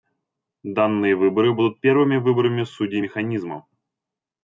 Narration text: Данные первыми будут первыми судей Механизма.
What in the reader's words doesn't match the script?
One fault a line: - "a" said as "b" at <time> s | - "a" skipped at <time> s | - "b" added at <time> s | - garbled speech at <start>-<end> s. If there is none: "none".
- "первыми" said as "выборы" at 1.1 s
- "выборами" added at 2.2 s